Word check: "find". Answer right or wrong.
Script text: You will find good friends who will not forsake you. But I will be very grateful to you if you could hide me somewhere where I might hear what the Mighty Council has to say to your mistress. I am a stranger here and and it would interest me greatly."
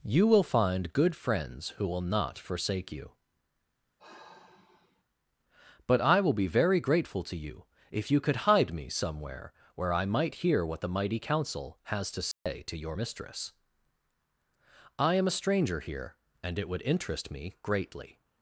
right